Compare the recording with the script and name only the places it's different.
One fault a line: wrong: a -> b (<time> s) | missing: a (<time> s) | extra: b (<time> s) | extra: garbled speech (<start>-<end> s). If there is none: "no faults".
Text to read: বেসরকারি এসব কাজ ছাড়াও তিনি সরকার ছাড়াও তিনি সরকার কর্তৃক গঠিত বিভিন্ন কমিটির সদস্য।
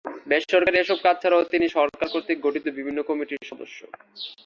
missing: ছাড়াও তিনি সরকার (2.1 s)